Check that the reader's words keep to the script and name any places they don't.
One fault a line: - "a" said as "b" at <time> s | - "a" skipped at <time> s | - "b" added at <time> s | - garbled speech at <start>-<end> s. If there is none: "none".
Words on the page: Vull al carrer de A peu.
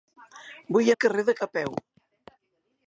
none